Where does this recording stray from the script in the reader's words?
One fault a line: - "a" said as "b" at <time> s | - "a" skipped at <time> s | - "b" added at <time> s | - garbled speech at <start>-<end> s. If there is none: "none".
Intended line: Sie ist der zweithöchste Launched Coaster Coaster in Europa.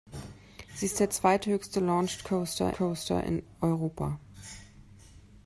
none